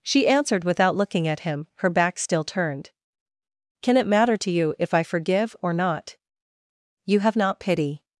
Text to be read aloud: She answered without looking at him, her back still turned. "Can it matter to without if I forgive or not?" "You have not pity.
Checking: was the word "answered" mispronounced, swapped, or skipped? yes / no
no